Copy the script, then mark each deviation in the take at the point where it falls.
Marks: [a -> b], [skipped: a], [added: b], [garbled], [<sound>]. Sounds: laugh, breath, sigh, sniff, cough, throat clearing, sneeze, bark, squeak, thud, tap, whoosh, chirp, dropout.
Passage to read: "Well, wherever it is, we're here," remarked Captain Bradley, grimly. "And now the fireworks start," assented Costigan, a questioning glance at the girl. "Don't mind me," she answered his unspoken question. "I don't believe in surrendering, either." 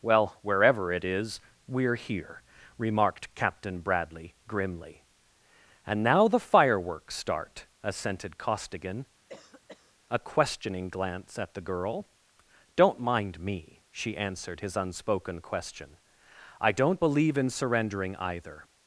"Well, wherever it is, we're here," remarked Captain Bradley, grimly. "And now the fireworks start," assented Costigan, [cough] a questioning glance at the girl. "Don't mind me," she answered his unspoken question. "I don't believe in surrendering, either."